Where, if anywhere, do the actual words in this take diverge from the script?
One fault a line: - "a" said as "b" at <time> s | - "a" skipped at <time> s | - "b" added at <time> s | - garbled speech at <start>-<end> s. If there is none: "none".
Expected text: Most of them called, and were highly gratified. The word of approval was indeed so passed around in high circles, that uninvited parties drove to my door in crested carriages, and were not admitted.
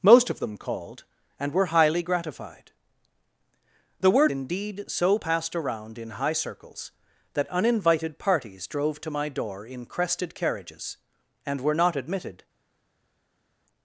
- "of approval was" skipped at 4.3 s